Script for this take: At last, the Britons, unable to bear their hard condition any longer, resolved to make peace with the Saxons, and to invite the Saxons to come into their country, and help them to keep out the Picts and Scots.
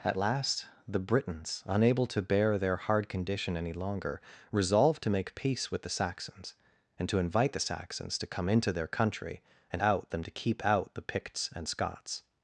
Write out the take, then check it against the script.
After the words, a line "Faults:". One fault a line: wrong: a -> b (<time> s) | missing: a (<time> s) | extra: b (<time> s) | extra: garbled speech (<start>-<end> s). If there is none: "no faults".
At last, the Britons, unable to bear their hard condition any longer, resolved to make peace with the Saxons, and to invite the Saxons to come into their country, and out them to keep out the Picts and Scots.
Faults:
wrong: help -> out (9.8 s)